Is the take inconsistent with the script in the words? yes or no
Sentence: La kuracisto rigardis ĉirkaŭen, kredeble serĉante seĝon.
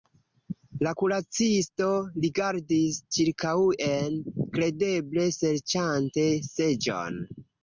no